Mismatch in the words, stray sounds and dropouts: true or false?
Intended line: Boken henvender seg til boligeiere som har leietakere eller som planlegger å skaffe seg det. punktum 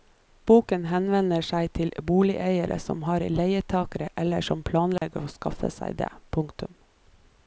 true